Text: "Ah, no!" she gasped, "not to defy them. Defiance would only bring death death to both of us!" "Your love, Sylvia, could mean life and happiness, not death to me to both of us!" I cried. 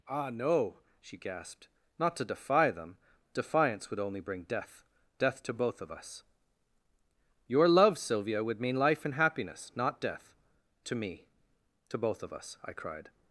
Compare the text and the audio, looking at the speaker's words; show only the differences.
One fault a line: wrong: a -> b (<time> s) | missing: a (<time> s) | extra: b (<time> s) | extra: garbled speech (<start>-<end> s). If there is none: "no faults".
wrong: could -> would (8.4 s)